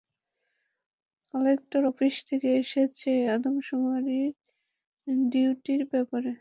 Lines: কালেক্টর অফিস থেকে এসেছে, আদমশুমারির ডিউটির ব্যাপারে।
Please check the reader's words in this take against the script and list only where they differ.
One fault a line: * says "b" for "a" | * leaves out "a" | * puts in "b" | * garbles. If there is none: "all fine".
all fine